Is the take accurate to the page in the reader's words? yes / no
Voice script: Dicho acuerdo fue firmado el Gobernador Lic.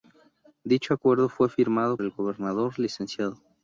yes